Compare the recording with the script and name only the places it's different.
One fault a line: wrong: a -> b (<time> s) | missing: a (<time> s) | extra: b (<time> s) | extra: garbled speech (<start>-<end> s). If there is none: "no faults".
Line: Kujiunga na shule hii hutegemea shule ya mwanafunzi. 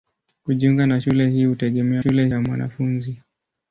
no faults